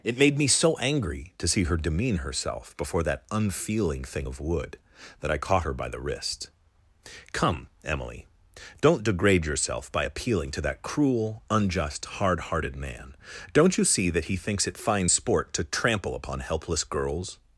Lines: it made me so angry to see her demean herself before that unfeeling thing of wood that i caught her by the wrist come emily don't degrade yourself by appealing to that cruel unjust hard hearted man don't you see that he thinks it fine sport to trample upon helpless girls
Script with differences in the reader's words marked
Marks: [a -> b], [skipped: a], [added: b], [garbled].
it made me so angry to see her demean herself before that unfeeling thing of wood that i caught her by the wrist come emily don't degrade yourself by appealing to that cruel unjust hard hearted man don't you see that he thinks it fine sport to trample upon helpless girls